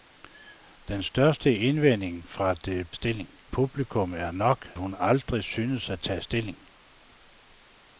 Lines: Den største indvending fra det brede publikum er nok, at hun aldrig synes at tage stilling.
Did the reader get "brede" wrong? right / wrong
wrong